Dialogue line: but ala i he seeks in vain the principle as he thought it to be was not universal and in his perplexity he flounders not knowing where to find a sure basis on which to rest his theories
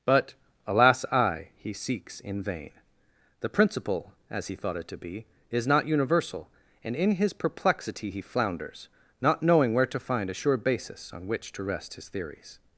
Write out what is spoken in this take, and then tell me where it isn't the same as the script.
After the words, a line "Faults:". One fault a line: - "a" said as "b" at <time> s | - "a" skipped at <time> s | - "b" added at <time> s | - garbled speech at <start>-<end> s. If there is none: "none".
but alas i he seeks in vain the principle as he thought it to be is not universal and in his perplexity he flounders not knowing where to find a sure basis on which to rest his theories
Faults:
- "ala" said as "alas" at 0.7 s
- "was" said as "is" at 5.5 s